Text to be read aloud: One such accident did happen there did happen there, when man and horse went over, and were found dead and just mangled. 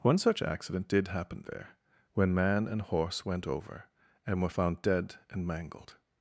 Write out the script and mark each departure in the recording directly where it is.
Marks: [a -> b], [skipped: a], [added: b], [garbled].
One such accident did happen there [skipped: did happen there,] when man and horse went over, and were found dead and [skipped: just] mangled.